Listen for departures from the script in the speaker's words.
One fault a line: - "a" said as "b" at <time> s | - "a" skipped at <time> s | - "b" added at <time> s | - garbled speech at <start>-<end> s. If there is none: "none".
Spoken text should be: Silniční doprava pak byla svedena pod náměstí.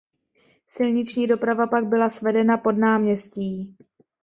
none